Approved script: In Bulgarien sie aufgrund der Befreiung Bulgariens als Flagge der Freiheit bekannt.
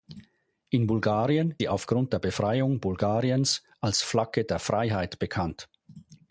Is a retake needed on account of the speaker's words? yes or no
no